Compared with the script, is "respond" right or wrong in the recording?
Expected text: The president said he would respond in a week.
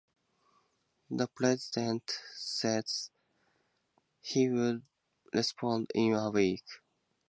right